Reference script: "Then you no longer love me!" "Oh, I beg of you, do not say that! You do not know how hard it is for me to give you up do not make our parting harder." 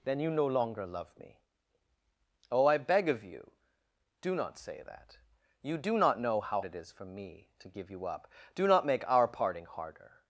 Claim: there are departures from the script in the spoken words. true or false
true